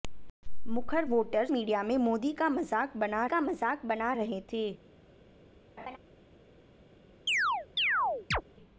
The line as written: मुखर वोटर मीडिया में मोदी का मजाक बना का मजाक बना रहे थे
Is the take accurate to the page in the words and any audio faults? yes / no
no